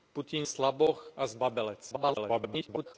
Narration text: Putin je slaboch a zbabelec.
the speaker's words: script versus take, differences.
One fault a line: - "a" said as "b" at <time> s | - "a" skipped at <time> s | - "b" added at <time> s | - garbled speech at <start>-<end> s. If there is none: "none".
- "je" skipped at 0.5 s
- garbled speech at 1.9-2.9 s